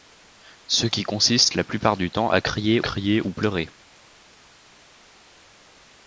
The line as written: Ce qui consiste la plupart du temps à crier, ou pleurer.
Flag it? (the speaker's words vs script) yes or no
yes